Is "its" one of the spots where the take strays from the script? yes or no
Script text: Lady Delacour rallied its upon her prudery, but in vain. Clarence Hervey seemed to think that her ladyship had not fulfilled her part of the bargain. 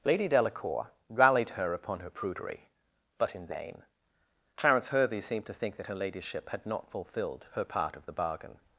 yes